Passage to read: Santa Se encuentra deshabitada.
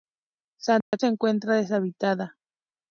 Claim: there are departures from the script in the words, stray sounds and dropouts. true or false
true